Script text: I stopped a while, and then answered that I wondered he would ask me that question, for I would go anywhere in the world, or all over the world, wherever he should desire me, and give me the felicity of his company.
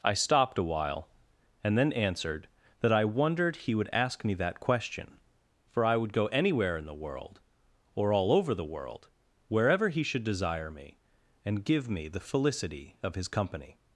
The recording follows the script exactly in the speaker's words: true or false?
true